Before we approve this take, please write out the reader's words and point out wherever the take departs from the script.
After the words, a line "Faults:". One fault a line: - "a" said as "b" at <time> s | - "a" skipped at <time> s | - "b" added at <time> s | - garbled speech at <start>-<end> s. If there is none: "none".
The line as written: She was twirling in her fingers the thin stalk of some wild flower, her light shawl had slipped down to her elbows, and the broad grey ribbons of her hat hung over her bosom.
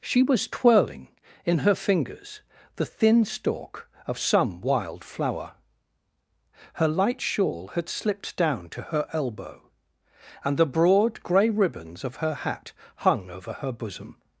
She was twirling in her fingers the thin stalk of some wild flower, her light shawl had slipped down to her elbow, and the broad grey ribbons of her hat hung over her bosom.
Faults:
- "elbows" said as "elbow" at 9.1 s